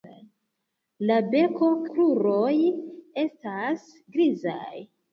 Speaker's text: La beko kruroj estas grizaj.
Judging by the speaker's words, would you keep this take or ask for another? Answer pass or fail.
pass